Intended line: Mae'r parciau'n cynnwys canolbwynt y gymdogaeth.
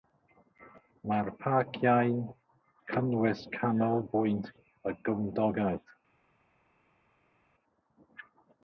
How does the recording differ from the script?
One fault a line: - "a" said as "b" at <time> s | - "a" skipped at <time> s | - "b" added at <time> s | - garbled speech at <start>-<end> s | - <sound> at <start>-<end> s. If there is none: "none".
none